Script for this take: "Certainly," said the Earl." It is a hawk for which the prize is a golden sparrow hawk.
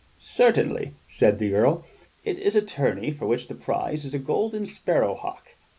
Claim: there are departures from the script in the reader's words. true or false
true